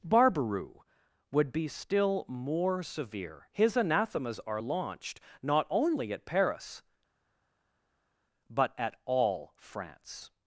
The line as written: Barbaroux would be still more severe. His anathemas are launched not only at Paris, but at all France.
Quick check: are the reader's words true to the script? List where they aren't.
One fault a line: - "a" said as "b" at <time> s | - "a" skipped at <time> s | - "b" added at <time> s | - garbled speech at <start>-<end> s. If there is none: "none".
none